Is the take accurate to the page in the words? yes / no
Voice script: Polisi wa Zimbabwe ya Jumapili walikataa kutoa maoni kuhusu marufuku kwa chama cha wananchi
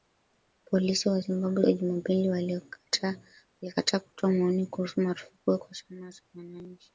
yes